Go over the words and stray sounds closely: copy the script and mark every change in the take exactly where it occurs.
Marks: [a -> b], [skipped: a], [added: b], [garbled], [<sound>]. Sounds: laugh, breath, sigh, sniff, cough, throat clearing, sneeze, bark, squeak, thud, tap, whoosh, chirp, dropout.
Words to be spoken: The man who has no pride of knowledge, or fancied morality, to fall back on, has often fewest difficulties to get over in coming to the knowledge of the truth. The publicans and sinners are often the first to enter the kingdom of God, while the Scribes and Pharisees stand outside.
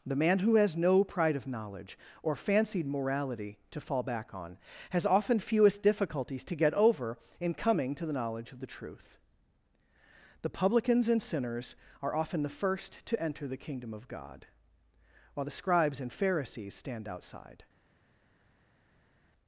The man who has no pride of knowledge, or fancied morality, to fall back on, has often fewest difficulties to get over in coming to the knowledge of the truth. The publicans and sinners are often the first to enter the kingdom of God, while the Scribes and Pharisees stand outside.